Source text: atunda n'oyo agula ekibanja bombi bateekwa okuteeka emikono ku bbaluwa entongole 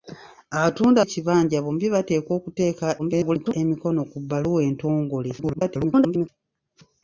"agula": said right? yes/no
no